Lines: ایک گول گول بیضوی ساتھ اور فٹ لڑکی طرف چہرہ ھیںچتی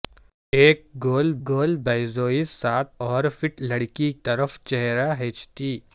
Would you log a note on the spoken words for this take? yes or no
no